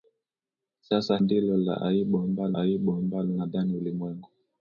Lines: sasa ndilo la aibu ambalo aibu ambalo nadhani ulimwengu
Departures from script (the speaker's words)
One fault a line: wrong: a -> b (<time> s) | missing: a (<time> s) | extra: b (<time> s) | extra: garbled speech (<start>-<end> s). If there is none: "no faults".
no faults